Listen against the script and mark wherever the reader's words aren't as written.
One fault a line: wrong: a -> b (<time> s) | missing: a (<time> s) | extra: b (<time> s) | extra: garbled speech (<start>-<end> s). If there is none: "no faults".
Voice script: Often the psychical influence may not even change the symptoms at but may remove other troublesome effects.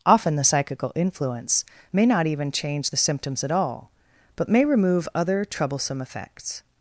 extra: all (3.5 s)